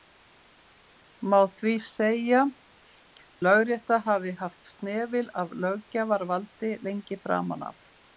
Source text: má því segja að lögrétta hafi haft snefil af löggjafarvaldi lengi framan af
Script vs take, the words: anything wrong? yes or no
yes